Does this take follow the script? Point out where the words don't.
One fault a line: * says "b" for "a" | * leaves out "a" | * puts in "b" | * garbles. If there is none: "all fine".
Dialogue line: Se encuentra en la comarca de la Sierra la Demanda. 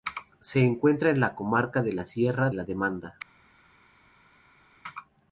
all fine